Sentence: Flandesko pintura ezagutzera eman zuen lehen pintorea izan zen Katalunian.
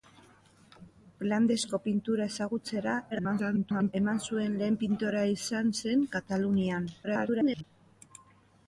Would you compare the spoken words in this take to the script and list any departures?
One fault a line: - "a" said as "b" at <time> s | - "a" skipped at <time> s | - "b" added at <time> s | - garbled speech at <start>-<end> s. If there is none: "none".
- garbled speech at 3.1-3.9 s
- garbled speech at 7.0-7.6 s